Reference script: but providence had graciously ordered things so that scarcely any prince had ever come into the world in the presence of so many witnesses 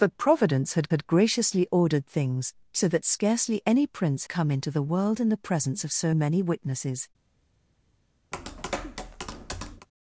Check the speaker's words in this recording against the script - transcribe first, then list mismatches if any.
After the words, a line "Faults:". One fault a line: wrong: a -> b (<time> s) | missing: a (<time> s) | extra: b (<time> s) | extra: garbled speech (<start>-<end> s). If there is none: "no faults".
but providence had had graciously ordered things so that scarcely any prince come into the world in the presence of so many witnesses
Faults:
extra: had (0.9 s)
missing: had ever (4.3 s)